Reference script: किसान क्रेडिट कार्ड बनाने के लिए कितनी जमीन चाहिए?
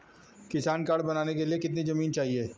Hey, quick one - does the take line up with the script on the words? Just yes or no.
no